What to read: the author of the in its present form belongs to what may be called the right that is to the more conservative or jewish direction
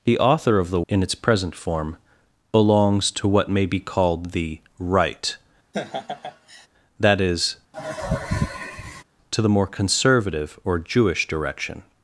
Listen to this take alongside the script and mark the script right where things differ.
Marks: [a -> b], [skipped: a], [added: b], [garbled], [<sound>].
the author of the in its present form belongs to what may be called the right [laugh] that is [sigh] to the more conservative or jewish direction